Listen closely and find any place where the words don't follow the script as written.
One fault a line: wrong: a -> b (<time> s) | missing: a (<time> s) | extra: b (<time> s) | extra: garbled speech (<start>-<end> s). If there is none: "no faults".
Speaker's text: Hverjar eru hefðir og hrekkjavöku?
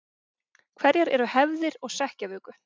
no faults